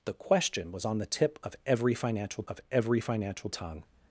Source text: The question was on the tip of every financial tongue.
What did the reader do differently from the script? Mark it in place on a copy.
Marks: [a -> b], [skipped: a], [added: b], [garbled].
The question was on the tip of every financial [added: of every financial] tongue.